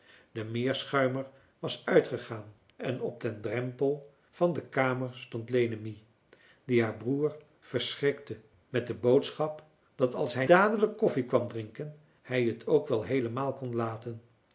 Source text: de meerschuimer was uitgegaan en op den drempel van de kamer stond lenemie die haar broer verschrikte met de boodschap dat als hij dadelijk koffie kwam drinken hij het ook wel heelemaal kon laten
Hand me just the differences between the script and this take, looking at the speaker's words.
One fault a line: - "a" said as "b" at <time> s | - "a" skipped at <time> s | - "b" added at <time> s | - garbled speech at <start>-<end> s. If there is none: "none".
none